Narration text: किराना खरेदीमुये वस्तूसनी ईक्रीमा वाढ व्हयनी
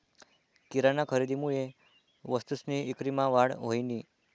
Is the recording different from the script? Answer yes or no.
no